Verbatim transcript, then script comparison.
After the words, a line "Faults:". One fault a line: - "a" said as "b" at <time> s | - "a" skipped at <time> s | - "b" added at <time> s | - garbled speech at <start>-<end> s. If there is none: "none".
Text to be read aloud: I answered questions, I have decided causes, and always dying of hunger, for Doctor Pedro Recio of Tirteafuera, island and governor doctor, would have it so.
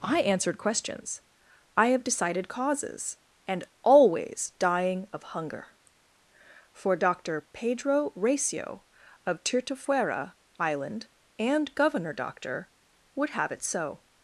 I answered questions, I have decided causes, and always dying of hunger, for Doctor Pedro Recio of Tirteafuera, island and governor doctor, would have it so.
Faults:
none